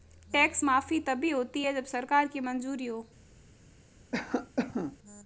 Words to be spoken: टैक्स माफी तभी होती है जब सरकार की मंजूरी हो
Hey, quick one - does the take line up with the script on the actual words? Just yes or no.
yes